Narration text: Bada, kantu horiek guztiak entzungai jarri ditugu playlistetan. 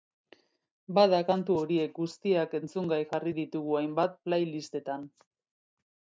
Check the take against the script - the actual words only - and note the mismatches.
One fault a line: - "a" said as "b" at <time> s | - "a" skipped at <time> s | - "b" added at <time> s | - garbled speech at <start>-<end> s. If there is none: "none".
- "hainbat" added at 3.8 s